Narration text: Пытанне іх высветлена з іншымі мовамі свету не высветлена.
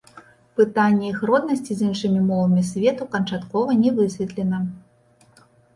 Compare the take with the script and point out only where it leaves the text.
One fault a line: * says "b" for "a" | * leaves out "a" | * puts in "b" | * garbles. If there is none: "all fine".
* says "роднасці" for "высветлена"
* puts in "канчаткова"